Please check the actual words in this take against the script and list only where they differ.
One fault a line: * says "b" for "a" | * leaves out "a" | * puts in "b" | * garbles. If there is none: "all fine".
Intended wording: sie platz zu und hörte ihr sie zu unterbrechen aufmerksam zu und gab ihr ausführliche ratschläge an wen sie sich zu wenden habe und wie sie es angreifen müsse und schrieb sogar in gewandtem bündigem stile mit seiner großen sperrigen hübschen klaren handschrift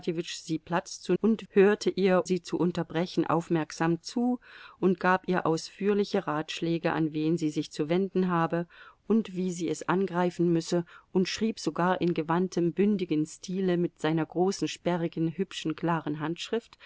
all fine